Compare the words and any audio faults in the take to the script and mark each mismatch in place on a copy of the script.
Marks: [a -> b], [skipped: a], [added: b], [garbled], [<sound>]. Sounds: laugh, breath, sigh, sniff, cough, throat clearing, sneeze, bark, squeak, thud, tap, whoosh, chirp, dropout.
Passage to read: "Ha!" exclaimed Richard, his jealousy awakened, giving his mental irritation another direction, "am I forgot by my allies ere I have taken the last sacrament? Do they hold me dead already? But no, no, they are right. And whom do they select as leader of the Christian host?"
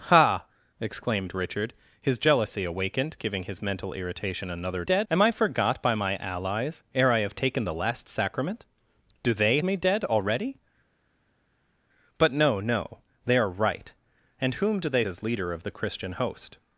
"Ha!" exclaimed Richard, his jealousy awakened, giving his mental irritation another [direction, -> dead] "am I forgot by my allies ere I have taken the last sacrament? Do they [skipped: hold] me dead already? But no, no, they are right. And whom do they [skipped: select] as leader of the Christian host?"